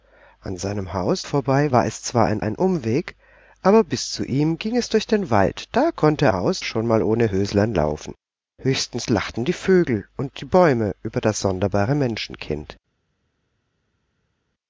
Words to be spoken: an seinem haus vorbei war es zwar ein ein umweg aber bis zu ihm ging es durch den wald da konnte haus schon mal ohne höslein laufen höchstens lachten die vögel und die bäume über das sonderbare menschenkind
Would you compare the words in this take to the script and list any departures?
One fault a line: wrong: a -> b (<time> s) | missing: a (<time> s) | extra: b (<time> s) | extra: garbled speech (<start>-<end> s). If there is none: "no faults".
no faults